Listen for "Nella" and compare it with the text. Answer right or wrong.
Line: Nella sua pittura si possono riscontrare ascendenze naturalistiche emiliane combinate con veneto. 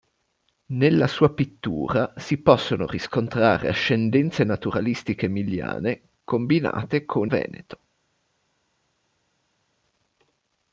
right